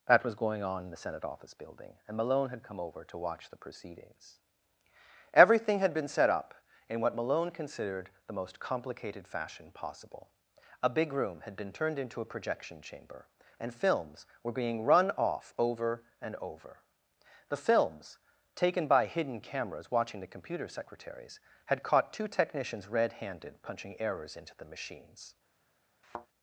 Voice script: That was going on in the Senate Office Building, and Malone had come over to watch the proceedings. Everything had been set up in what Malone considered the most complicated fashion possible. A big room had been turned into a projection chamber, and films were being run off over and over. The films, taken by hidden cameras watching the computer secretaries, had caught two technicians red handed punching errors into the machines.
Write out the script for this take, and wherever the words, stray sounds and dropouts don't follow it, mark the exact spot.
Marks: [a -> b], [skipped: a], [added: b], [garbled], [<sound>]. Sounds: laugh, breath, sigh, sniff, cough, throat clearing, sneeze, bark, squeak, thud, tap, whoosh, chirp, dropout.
That was going on in the Senate Office Building, and Malone had come over to watch the proceedings. Everything had been set up in what Malone considered the most complicated fashion possible. A big room had been turned into a projection chamber, and films were being run off over and over. The films, taken by hidden cameras watching the computer secretaries, had caught two technicians red handed punching errors into the machines. [thud]